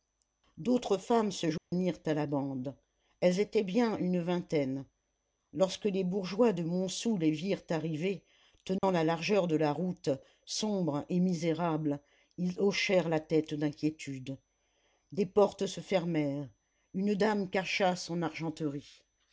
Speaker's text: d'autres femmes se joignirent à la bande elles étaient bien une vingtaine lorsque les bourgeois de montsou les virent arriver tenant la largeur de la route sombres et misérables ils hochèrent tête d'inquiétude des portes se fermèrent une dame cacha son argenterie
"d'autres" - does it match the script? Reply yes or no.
yes